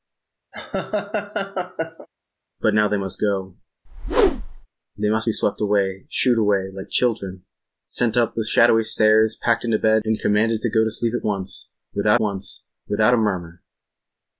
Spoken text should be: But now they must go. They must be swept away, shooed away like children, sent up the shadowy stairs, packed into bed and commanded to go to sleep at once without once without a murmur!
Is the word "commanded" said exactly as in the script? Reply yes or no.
yes